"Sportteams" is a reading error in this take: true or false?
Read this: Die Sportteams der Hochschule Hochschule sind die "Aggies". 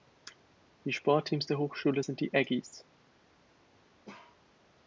false